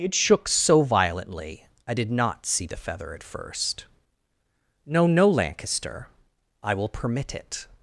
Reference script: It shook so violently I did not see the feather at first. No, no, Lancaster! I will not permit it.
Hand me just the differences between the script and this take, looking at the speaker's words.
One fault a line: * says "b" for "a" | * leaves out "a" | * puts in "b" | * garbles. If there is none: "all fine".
* leaves out "not"